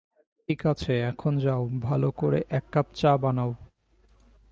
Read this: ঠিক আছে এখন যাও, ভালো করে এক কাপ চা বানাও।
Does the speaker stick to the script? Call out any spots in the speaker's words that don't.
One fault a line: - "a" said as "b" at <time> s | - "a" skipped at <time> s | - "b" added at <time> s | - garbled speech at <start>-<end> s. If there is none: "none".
none